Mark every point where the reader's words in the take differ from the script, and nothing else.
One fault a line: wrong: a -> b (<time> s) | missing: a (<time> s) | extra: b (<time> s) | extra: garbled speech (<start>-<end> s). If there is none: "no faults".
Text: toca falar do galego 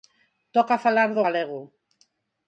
no faults